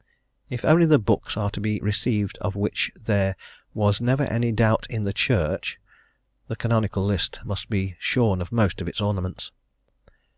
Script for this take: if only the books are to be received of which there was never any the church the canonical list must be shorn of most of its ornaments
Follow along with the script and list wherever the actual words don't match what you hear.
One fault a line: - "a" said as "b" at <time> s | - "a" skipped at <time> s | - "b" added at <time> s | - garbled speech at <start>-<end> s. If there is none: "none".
- "doubt in" added at 4.5 s